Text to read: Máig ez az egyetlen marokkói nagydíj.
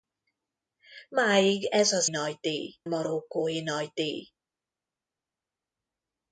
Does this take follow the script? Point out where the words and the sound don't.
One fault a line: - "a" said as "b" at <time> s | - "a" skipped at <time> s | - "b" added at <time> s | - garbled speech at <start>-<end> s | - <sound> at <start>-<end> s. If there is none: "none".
- "egyetlen" said as "nagydíj" at 2.1 s